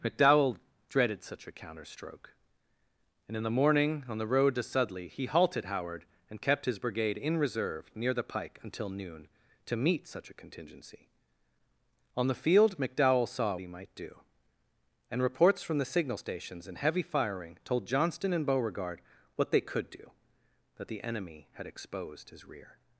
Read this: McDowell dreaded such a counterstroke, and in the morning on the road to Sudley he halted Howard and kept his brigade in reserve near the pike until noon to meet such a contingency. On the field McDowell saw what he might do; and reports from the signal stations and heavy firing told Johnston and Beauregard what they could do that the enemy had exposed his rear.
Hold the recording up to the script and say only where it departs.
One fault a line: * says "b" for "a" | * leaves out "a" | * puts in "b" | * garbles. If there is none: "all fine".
* leaves out "what"